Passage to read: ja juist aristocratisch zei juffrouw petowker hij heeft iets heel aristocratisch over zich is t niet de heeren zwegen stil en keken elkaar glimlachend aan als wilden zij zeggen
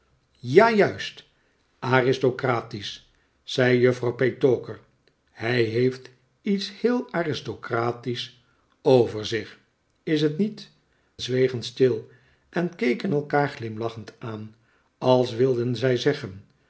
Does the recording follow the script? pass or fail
fail